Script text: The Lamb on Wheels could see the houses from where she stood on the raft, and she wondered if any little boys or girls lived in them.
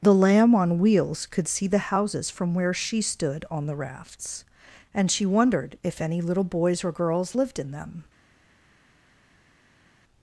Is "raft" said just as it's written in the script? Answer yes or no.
no